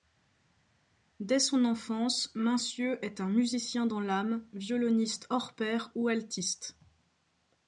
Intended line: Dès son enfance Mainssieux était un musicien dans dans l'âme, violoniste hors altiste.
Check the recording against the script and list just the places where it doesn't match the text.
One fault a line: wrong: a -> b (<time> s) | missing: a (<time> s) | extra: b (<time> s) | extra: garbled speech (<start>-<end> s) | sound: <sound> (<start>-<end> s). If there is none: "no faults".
wrong: était -> est (3.1 s)
missing: dans (4.0 s)
extra: pair ou (5.5 s)